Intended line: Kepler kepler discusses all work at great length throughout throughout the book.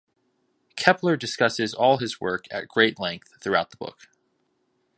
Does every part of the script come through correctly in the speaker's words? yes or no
no